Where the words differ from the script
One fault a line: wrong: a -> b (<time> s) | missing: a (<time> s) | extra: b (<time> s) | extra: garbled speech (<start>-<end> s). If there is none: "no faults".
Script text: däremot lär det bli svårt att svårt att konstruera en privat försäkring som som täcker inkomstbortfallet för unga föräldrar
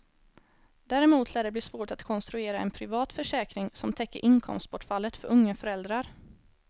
missing: svårt att (2.0 s)
missing: som (3.9 s)